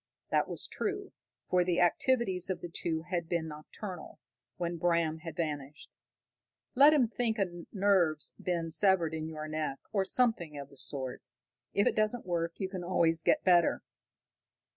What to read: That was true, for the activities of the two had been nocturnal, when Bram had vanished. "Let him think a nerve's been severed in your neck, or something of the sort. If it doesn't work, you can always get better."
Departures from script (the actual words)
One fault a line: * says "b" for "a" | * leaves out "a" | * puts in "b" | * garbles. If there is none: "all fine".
all fine